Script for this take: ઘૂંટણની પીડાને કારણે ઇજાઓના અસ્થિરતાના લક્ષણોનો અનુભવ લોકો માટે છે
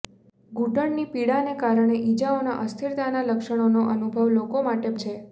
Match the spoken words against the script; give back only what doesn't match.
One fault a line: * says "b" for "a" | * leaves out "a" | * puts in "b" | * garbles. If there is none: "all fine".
all fine